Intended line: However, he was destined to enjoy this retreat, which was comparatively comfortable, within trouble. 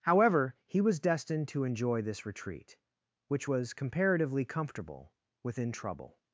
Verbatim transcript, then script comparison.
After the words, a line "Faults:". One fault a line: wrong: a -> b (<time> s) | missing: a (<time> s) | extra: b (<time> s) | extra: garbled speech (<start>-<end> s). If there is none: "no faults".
However, he was destined to enjoy this retreat, which was comparatively comfortable, within trouble.
Faults:
no faults